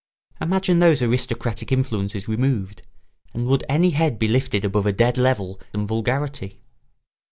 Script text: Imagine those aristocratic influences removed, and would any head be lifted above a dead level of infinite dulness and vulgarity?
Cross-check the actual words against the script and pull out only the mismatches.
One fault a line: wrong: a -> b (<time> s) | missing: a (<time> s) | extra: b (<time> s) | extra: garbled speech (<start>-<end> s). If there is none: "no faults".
missing: of infinite dulness (5.6 s)